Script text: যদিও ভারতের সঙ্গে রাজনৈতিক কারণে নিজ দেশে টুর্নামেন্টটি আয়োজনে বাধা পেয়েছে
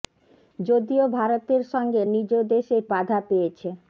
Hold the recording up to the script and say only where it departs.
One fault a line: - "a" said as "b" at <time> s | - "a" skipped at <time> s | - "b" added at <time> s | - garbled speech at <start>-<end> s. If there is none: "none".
- "রাজনৈতিক কারণে" skipped at 2.0 s
- "টুর্নামেন্টটি আয়োজনে" skipped at 2.8 s